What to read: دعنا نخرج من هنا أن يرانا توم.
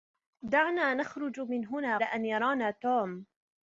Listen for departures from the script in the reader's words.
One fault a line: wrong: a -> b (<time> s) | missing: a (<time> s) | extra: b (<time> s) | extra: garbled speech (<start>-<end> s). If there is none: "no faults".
no faults